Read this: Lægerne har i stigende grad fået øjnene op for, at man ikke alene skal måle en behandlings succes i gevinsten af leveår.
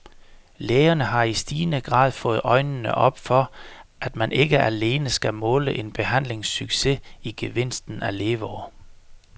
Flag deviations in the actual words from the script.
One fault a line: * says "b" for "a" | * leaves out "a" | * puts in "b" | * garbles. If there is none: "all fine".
all fine